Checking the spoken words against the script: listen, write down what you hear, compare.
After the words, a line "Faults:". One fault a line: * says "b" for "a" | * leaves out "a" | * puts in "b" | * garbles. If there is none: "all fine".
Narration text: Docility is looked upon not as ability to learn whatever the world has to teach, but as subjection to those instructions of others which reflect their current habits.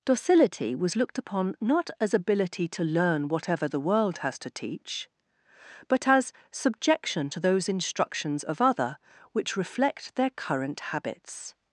Docility was looked upon not as ability to learn whatever the world has to teach, but as subjection to those instructions of other which reflect their current habits.
Faults:
* says "was" for "is"
* says "other" for "others"